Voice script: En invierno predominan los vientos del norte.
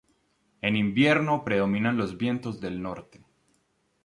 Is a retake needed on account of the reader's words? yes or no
no